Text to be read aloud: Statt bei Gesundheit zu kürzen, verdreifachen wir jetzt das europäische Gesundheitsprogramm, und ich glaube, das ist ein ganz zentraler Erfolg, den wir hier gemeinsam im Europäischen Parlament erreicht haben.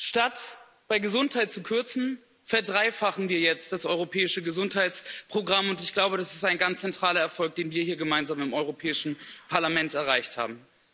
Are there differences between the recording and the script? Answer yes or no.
no